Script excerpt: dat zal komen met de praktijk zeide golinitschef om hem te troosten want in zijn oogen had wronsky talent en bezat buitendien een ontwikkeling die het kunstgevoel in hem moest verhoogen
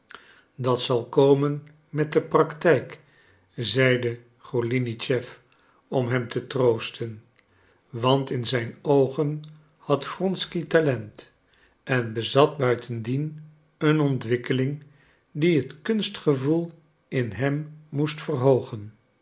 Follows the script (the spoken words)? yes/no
yes